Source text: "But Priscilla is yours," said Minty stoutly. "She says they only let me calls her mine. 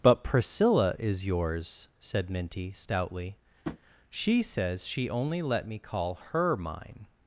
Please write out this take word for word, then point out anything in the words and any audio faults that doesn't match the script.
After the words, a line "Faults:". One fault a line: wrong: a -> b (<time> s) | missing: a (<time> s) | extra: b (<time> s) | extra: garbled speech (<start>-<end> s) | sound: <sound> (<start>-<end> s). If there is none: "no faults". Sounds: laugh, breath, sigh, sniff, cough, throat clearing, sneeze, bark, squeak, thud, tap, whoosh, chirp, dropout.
"But Priscilla is yours," said Minty stoutly. "She says she only let me call her mine.
Faults:
sound: tap (3.6-3.8 s)
wrong: they -> she (4.9 s)
wrong: calls -> call (5.8 s)